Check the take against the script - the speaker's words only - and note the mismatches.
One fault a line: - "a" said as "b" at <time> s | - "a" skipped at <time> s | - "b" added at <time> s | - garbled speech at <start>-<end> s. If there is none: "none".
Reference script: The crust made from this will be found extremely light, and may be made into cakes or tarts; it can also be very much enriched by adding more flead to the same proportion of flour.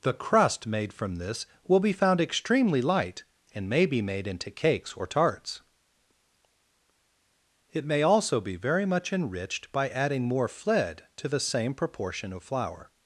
- "can" said as "may" at 7.8 s